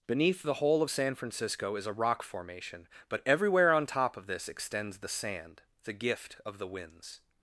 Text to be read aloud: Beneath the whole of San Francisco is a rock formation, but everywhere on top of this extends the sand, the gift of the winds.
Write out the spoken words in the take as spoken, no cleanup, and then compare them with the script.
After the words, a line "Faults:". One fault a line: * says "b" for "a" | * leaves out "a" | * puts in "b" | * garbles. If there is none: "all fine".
Beneath the whole of San Francisco is a rock formation, but everywhere on top of this extends the sand, the gift of the winds.
Faults:
all fine